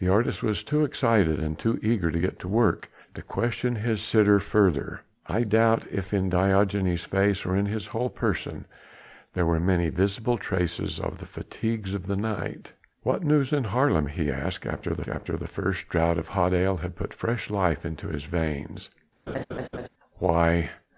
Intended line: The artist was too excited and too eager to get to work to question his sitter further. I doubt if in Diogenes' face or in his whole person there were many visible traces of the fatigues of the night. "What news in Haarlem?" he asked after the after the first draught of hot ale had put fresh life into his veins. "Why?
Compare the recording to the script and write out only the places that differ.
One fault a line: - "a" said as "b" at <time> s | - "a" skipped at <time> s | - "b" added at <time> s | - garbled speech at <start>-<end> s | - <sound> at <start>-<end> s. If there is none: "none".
- laugh at 19.3-19.9 s